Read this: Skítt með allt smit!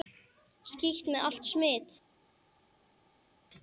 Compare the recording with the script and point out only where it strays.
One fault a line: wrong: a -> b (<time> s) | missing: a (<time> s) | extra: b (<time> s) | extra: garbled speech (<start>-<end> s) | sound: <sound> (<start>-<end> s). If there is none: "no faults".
no faults